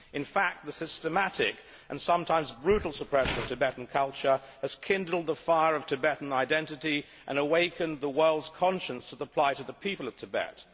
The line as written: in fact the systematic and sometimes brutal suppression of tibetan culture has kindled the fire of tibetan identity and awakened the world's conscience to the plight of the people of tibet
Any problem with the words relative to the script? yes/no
no